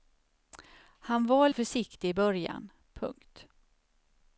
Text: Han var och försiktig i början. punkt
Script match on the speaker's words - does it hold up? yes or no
yes